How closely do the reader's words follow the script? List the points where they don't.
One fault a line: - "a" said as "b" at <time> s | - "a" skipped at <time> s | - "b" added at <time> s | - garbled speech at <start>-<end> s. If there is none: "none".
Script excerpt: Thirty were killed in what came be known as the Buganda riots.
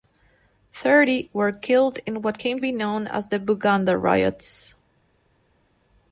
none